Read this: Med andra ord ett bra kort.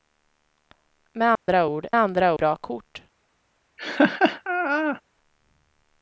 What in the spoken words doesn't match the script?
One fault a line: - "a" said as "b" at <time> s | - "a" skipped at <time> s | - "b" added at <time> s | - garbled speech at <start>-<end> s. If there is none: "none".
- "ett" said as "andra" at 2.0 s